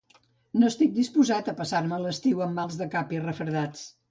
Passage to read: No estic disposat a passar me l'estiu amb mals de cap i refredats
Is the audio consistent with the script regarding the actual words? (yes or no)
yes